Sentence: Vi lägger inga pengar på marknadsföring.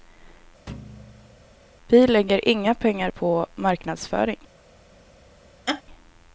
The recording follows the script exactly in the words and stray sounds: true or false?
false